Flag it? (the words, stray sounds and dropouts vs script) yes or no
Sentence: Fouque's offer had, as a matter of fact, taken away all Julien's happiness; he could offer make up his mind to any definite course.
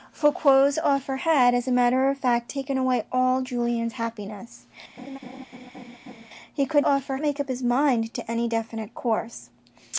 yes